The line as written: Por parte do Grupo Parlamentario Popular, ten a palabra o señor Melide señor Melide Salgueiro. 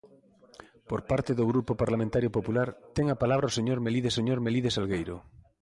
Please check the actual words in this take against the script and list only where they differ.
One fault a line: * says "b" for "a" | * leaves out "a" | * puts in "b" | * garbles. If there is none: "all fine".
all fine